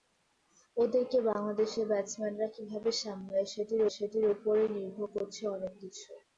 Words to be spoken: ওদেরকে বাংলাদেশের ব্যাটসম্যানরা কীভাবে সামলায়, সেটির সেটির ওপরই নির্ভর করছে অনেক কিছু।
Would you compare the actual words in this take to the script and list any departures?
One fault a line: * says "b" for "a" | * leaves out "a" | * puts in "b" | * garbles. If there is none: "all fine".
all fine